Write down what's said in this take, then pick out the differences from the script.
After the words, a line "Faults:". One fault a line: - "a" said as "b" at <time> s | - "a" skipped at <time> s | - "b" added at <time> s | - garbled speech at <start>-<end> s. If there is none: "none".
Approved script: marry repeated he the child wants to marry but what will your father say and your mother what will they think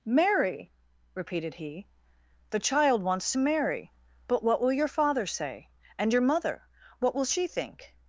marry repeated he the child wants to marry but what will your father say and your mother what will she think
Faults:
- "they" said as "she" at 7.3 s